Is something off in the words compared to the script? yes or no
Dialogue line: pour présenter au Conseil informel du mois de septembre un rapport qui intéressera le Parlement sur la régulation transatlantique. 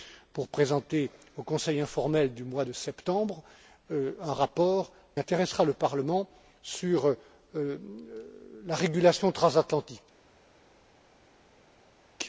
yes